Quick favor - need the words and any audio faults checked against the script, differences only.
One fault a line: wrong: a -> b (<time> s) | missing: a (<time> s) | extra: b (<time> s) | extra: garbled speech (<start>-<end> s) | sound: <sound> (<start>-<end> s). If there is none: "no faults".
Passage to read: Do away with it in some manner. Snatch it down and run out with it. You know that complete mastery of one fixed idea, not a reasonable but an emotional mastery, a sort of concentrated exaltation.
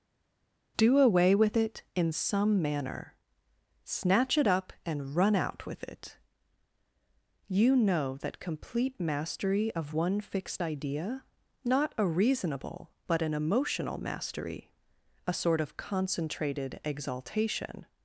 wrong: down -> up (4.5 s)